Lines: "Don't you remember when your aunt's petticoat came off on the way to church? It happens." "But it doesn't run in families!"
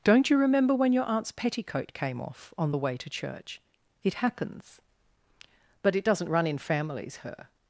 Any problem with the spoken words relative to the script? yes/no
yes